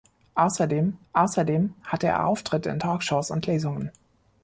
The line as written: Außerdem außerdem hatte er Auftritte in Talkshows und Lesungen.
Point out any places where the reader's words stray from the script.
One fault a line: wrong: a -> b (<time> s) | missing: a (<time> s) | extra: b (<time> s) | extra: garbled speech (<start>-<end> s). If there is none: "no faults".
no faults